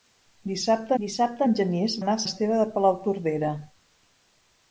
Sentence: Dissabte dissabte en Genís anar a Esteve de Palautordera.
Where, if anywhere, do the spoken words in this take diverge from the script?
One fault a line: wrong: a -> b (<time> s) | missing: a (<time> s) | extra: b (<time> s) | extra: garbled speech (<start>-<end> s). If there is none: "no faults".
no faults